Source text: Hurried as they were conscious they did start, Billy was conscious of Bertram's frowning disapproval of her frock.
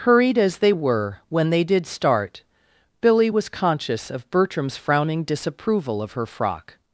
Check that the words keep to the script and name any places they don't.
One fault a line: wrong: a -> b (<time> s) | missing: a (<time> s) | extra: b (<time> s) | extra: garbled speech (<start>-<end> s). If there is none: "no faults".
wrong: conscious -> when (1.3 s)